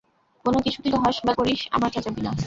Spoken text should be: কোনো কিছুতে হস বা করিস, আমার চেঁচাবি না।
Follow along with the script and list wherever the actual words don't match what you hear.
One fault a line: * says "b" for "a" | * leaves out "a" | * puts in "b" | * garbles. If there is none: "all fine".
all fine